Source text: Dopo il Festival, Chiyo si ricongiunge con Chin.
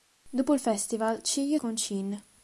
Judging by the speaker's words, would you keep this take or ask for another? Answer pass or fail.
fail